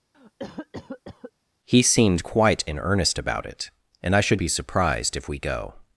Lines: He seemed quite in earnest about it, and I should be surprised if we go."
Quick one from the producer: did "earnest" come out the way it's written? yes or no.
yes